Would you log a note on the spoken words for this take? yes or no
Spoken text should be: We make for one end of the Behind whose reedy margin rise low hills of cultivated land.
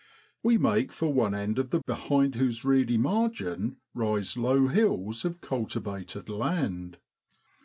no